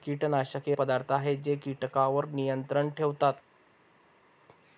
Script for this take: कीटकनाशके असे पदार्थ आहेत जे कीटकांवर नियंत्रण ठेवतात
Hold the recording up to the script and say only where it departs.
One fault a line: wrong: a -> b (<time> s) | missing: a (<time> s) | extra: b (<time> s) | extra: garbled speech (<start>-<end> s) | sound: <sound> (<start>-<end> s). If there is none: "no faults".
missing: असे (0.7 s)